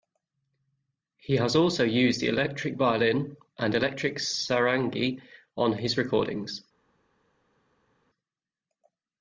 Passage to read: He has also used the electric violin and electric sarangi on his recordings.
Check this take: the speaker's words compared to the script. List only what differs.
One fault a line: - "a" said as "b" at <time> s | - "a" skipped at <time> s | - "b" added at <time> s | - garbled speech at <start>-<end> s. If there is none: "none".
none